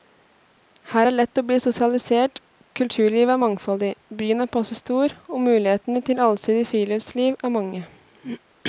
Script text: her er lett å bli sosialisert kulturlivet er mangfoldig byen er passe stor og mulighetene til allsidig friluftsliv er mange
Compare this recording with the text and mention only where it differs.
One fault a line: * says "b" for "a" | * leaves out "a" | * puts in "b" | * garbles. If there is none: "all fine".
all fine